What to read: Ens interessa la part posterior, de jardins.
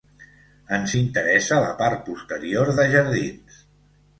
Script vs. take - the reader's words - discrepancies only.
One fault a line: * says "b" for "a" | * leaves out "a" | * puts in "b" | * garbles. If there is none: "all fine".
all fine